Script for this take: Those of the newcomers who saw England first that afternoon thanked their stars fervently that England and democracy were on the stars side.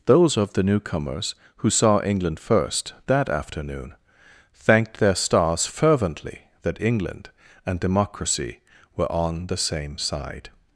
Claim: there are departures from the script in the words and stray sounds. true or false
true